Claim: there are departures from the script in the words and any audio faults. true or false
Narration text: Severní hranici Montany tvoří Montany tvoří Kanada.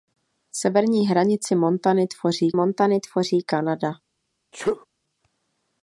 true